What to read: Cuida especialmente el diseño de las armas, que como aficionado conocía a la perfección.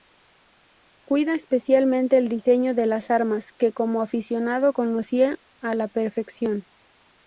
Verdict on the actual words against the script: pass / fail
pass